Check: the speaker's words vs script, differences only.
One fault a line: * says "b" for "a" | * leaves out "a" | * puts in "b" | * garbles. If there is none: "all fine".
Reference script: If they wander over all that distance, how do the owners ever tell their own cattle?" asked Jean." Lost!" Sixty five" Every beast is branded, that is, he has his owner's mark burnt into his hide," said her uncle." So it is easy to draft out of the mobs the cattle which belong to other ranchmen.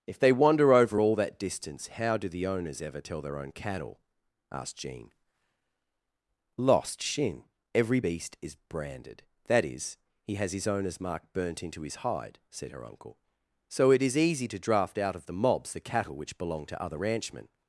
* says "Shin" for "Sixty five"